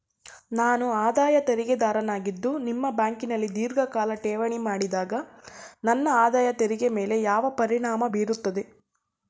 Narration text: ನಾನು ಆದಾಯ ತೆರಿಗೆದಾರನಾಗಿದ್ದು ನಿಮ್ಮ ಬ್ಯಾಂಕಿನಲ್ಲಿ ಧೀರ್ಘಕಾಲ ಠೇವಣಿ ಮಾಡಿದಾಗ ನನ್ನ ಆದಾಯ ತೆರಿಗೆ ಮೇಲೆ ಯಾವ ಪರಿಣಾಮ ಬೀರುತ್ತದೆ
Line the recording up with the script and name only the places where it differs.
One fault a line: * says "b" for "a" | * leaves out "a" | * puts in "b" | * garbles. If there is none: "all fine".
all fine